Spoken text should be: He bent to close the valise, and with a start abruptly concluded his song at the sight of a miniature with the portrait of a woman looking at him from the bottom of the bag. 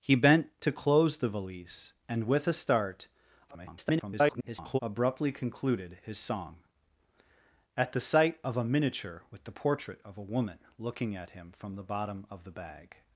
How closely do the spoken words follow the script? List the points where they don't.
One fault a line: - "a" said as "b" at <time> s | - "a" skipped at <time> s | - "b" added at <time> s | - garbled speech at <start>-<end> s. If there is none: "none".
- garbled speech at 3.5-4.8 s